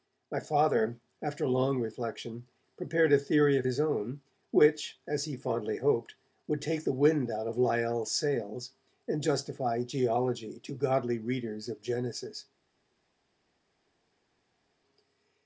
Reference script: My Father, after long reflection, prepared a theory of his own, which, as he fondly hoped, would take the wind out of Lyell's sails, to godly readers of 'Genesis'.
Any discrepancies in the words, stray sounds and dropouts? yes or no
yes